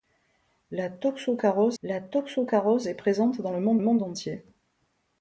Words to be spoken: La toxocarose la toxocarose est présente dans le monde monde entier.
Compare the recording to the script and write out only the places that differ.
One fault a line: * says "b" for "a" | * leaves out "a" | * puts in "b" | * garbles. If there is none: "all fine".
all fine